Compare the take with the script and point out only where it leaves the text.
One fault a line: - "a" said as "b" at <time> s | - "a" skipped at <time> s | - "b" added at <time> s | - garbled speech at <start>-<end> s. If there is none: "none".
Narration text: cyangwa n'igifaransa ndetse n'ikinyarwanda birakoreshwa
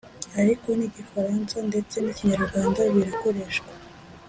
- "cyangwa" said as "ariko" at 0.4 s